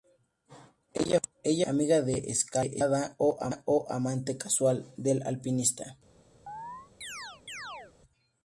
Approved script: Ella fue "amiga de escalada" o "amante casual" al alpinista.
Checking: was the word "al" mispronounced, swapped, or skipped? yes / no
yes